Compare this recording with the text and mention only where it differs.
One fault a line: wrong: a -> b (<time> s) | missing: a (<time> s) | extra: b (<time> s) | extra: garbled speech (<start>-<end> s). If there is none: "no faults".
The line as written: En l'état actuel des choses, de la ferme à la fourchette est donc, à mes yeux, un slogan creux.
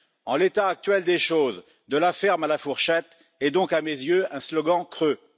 no faults